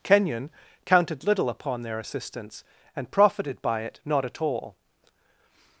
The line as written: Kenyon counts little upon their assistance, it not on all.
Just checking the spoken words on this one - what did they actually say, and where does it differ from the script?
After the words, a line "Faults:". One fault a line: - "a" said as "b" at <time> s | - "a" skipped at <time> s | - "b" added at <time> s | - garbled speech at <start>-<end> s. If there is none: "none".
Kenyon counted little upon their assistance, and profited by it not at all.
Faults:
- "counts" said as "counted" at 0.8 s
- "and profited by" added at 3.0 s
- "on" said as "at" at 4.2 s